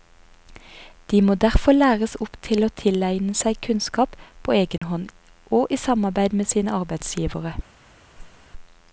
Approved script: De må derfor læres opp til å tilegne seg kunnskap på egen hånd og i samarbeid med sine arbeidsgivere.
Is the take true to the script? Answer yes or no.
yes